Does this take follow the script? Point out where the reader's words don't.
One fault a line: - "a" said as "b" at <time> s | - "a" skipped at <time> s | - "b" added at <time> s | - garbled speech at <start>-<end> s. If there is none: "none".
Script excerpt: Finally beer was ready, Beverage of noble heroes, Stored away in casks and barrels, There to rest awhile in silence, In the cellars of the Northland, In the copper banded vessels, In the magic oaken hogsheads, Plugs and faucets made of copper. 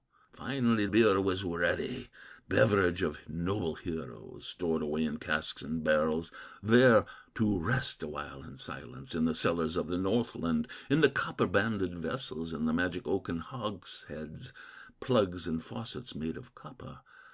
none